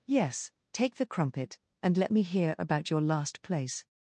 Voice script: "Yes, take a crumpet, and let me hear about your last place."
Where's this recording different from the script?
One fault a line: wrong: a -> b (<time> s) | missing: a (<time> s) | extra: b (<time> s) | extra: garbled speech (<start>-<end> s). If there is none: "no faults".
wrong: a -> the (0.9 s)